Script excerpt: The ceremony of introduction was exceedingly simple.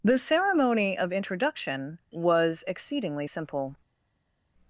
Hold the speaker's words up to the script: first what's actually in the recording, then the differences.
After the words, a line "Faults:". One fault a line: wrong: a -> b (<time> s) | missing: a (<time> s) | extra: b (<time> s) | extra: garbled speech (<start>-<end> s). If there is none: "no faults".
The ceremony of introduction was exceedingly simple.
Faults:
no faults